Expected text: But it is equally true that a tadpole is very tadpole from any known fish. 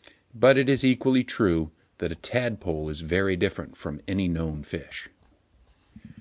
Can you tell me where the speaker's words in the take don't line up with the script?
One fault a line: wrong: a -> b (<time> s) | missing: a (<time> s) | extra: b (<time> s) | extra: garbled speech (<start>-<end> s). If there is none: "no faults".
wrong: tadpole -> different (3.4 s)